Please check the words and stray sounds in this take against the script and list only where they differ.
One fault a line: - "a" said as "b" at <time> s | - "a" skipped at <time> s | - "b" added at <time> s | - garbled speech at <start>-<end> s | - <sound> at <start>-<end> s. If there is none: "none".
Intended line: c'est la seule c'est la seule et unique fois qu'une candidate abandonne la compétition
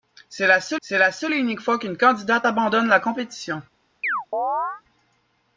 - chirp at 4.0-4.8 s